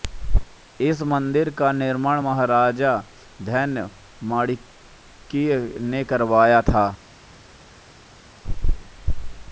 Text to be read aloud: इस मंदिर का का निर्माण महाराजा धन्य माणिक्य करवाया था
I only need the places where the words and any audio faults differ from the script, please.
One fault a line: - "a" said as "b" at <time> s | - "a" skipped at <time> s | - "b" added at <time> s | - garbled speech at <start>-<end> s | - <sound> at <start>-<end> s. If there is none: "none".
- "का" skipped at 1.7 s
- "ने" added at 5.8 s